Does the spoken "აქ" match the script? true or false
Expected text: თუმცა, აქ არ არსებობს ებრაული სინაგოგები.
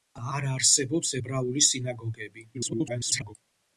false